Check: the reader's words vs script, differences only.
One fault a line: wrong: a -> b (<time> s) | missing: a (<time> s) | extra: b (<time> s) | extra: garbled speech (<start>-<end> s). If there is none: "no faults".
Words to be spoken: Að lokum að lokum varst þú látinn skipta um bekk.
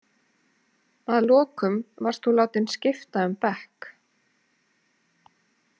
missing: að lokum (1.8 s)